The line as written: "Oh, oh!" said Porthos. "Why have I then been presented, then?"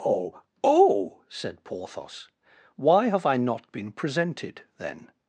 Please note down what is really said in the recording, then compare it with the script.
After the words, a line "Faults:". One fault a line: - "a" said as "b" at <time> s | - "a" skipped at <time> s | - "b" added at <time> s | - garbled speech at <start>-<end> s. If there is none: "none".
"Oh, oh!" said Porthos. "Why have I not been presented, then?"
Faults:
- "then" said as "not" at 3.4 s